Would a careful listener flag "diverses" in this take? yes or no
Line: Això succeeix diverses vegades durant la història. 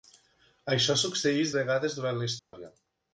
yes